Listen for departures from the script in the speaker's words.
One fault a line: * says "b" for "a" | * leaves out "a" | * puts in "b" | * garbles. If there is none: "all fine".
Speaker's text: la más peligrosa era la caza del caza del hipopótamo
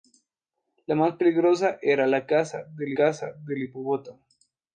all fine